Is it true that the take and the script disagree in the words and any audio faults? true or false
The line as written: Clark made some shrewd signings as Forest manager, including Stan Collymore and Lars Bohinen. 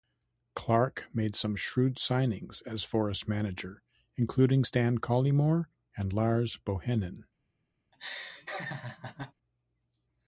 true